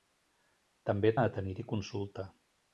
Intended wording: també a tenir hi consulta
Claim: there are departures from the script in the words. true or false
false